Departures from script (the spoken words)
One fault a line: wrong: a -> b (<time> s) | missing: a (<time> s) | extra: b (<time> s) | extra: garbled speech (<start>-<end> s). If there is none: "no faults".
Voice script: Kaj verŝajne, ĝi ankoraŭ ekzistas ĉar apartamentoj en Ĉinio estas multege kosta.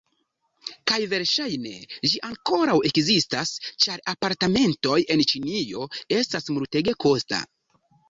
no faults